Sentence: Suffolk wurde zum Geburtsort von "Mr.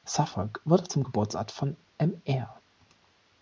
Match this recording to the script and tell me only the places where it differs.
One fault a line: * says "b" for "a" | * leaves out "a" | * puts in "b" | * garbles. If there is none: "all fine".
all fine